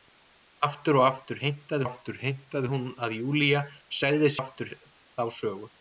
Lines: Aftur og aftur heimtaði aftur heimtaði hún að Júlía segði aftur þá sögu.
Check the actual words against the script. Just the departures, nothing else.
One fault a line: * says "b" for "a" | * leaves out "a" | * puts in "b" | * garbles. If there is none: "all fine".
all fine